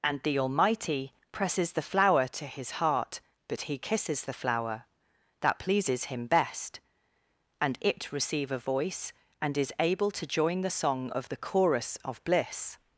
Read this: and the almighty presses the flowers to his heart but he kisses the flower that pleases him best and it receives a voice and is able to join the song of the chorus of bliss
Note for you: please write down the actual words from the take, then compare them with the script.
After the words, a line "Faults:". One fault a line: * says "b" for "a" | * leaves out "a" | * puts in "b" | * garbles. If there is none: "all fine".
and the almighty presses the flower to his heart but he kisses the flower that pleases him best and it receive a voice and is able to join the song of the chorus of bliss
Faults:
* says "flower" for "flowers"
* says "receive" for "receives"